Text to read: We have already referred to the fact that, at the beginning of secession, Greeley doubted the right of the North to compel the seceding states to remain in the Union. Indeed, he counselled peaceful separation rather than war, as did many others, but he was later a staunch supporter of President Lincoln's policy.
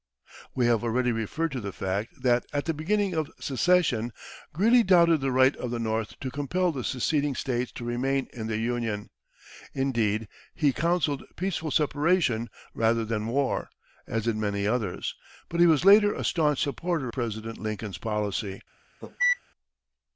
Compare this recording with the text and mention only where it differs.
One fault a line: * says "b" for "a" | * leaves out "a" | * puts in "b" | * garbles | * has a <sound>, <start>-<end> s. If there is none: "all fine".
* leaves out "of"
* has a cough, 19.0-19.4 s